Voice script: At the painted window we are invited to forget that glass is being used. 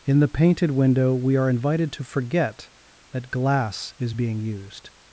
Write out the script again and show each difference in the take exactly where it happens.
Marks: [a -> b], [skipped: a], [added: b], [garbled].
[At -> In] the painted window we are invited to forget that glass is being used.